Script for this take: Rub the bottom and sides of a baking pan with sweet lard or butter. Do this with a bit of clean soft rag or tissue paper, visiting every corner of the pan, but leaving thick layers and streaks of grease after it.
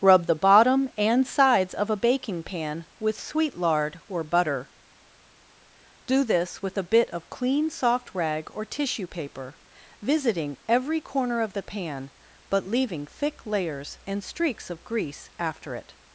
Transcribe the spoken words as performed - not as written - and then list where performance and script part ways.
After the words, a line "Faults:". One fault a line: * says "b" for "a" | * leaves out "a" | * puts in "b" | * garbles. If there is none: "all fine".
Rub the bottom and sides of a baking pan with sweet lard or butter. Do this with a bit of clean soft rag or tissue paper, visiting every corner of the pan, but leaving thick layers and streaks of grease after it.
Faults:
all fine